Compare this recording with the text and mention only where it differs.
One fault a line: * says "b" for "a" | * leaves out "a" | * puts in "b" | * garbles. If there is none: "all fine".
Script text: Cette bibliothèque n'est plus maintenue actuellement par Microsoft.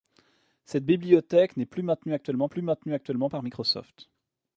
* puts in "plus maintenue actuellement"